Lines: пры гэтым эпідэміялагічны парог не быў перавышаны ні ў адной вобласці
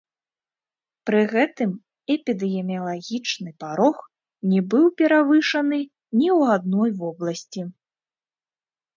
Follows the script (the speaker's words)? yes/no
yes